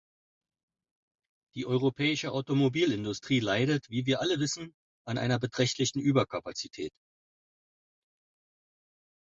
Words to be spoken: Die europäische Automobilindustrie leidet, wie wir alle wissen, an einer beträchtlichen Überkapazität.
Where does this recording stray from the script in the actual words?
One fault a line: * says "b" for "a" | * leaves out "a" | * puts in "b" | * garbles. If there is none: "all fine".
all fine